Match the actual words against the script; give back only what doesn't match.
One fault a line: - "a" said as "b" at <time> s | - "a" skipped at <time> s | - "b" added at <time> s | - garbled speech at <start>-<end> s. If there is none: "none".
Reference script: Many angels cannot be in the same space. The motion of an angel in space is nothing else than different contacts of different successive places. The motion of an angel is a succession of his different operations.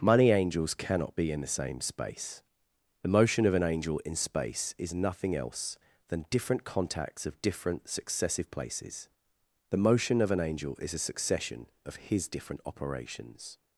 - "Many" said as "Money" at 0.0 s